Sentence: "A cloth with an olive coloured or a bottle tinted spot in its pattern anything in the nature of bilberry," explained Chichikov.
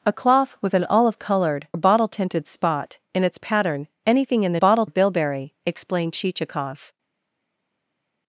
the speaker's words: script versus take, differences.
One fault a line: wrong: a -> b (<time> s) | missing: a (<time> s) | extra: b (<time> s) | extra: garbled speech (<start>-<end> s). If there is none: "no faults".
missing: or (1.7 s)
wrong: nature -> bottle (4.5 s)